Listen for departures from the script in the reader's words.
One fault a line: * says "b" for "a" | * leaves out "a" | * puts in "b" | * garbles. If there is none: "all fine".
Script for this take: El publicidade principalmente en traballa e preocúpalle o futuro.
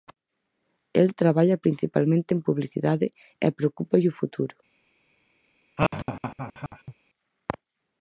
* says "traballa" for "publicidade"
* says "publicidade" for "traballa"